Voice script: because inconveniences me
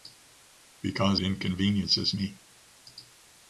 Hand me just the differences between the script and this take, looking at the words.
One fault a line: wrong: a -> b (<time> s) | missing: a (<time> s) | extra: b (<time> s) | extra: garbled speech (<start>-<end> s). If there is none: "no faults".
no faults